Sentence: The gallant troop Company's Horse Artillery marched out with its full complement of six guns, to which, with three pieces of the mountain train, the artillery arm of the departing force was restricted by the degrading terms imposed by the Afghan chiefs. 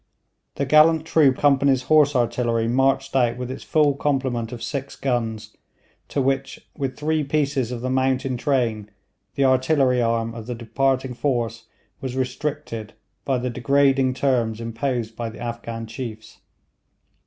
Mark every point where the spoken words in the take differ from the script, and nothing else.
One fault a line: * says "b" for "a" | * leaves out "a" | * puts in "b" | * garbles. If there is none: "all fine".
all fine